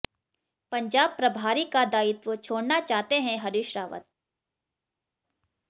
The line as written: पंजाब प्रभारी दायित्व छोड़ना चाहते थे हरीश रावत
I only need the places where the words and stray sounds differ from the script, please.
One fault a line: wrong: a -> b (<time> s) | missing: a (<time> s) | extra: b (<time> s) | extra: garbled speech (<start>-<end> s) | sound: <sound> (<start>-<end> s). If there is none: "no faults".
extra: का (1.6 s)
wrong: थे -> हैं (3.2 s)